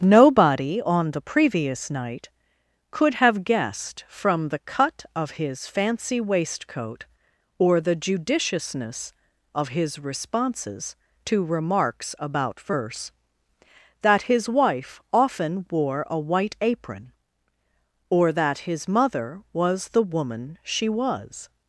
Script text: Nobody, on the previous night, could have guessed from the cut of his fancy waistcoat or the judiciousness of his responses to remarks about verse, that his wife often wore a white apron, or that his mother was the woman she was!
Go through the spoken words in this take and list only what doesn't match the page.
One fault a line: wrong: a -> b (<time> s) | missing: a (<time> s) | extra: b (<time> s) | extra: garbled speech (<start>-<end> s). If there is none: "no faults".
no faults